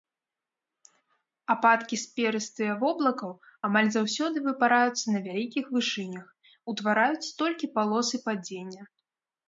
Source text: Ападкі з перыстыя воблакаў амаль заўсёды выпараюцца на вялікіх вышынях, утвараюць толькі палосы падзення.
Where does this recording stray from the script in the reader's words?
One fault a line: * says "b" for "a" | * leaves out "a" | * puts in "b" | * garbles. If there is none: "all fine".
all fine